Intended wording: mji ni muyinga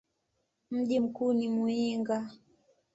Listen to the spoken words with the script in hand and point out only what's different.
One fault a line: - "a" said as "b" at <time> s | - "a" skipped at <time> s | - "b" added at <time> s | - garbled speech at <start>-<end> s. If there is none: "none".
- "mkuu" added at 1.0 s